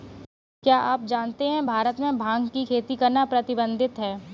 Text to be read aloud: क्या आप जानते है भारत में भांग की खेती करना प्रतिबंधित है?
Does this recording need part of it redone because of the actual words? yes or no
no